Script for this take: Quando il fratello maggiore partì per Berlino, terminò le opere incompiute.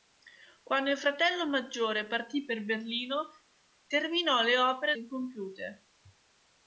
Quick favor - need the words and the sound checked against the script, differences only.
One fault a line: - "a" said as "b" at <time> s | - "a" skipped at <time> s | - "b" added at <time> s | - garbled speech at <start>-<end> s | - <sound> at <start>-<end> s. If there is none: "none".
none